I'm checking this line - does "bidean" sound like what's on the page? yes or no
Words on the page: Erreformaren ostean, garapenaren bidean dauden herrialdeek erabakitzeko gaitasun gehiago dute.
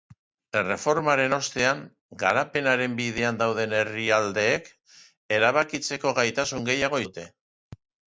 yes